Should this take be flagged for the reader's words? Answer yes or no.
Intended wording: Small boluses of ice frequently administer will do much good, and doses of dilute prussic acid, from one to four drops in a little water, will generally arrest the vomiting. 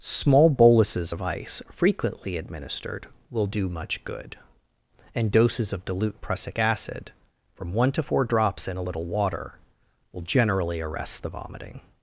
yes